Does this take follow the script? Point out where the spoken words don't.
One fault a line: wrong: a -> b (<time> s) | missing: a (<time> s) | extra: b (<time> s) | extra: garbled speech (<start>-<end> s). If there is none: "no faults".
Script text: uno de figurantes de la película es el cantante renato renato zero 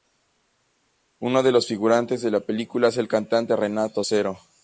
extra: los (1.5 s)
missing: renato (4.0 s)